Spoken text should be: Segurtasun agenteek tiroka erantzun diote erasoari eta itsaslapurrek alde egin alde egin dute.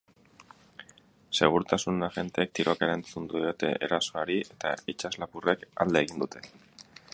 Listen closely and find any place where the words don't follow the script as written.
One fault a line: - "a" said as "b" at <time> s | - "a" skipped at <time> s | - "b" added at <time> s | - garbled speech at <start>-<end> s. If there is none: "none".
- "alde egin" skipped at 6.3 s